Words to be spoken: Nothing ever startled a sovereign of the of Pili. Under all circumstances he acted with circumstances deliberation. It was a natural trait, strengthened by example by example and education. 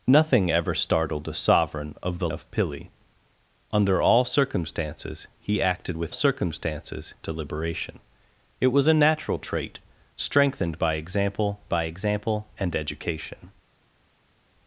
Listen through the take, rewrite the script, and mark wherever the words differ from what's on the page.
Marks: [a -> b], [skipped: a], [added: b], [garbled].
Nothing ever startled a sovereign of the of Pili. Under all circumstances he acted with circumstances deliberation. It was a natural trait, strengthened by example by example and education.